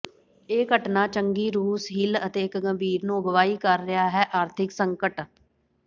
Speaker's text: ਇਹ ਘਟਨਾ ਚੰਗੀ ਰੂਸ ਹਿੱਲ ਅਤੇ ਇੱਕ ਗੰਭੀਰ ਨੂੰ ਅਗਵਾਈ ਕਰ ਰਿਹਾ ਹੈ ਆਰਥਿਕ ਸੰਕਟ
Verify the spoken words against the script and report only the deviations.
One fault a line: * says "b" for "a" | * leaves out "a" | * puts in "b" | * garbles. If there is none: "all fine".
all fine